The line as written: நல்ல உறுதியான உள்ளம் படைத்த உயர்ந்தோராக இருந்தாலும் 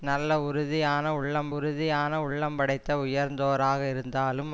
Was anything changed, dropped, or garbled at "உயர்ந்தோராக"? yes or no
no